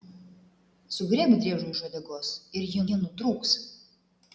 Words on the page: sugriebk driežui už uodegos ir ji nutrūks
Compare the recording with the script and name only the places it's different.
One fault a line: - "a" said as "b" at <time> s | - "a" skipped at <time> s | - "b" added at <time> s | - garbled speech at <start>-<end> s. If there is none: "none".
- "ji" added at 2.9 s